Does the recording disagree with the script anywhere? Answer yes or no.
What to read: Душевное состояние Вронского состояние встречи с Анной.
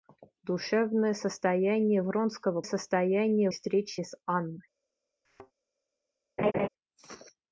no